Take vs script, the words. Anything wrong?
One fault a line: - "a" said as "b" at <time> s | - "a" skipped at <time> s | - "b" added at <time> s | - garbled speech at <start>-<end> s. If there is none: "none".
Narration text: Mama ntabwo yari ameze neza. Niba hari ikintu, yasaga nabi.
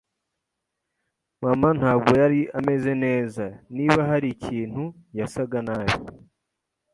none